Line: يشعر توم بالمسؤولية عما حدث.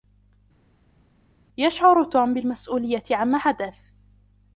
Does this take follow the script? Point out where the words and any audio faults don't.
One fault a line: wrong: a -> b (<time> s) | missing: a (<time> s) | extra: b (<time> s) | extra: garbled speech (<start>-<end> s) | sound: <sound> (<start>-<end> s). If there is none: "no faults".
no faults